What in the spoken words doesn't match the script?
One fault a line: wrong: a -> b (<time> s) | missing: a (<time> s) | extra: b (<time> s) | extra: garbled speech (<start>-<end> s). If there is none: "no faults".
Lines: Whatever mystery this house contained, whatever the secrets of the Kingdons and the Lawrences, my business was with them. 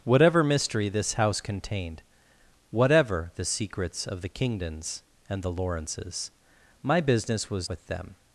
no faults